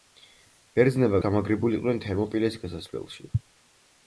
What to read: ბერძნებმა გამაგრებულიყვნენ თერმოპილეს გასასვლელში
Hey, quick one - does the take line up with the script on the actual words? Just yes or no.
yes